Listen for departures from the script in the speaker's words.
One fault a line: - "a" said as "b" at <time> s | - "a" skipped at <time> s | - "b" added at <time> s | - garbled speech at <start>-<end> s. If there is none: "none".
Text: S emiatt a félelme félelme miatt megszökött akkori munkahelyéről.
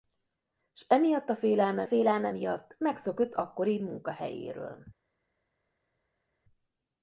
none